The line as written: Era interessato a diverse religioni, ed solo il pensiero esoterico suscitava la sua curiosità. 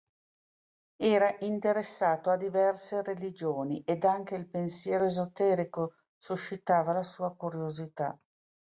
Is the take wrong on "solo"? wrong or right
wrong